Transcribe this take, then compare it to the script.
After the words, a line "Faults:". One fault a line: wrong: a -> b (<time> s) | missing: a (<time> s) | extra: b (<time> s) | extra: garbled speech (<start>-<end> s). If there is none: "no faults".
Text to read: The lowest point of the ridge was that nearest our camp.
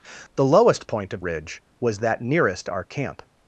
The lowest point of ridge was that nearest our camp.
Faults:
missing: the (1.2 s)